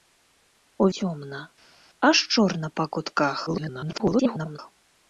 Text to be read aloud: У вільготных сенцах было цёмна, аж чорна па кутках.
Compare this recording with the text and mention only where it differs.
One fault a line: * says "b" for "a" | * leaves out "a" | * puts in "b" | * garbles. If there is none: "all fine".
* leaves out "вільготных сенцах было"
* garbles